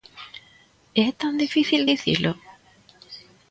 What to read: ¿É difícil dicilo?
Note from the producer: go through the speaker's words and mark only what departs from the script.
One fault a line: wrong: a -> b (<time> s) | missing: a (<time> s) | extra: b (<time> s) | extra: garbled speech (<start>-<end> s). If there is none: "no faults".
extra: tan (1.2 s)